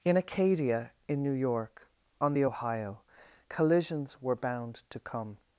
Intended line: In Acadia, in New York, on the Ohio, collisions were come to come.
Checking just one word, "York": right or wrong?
right